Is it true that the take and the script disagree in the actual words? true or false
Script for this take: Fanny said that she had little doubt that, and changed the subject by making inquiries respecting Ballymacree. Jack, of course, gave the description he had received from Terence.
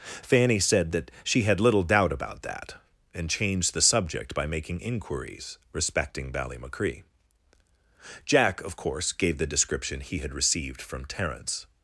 true